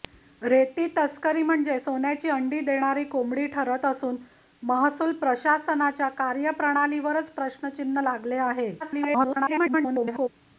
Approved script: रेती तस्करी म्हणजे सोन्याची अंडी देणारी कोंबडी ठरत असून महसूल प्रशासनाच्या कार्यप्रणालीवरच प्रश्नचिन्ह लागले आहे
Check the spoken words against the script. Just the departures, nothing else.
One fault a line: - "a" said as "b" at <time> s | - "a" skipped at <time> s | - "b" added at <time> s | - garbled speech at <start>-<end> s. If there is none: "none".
- garbled speech at 8.8-10.3 s